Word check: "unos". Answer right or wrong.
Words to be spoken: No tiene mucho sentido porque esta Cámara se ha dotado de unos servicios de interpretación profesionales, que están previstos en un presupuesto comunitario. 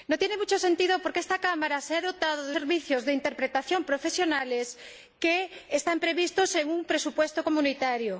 wrong